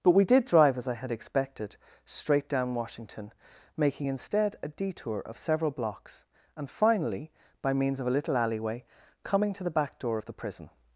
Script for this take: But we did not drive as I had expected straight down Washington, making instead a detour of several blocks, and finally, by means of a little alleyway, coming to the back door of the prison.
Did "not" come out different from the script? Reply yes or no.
yes